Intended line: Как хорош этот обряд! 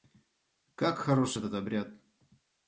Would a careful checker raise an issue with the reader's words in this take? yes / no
no